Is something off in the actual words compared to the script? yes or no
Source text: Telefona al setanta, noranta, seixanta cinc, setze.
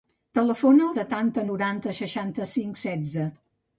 no